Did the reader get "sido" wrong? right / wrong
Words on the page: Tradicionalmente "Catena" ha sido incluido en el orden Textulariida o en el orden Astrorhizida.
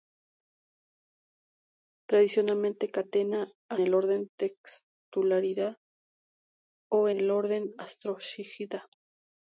wrong